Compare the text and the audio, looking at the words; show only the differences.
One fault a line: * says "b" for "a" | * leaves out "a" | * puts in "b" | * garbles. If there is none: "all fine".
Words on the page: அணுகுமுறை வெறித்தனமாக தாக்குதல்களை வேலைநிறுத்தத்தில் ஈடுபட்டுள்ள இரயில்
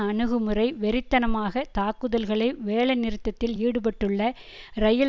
all fine